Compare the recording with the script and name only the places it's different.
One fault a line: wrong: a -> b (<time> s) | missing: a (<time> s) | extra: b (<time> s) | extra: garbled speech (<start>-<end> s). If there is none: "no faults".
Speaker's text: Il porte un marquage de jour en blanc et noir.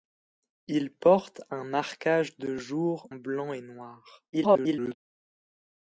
missing: en (3.1 s)
extra: garbled speech (4.3-5.0 s)